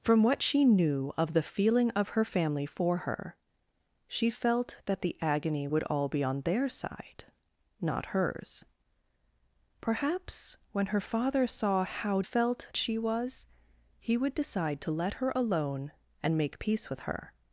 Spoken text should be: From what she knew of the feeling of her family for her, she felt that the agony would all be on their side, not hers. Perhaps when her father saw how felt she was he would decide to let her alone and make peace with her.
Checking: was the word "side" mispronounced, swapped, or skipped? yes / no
no